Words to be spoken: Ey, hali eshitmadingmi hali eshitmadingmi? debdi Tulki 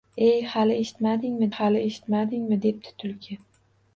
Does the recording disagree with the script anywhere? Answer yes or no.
no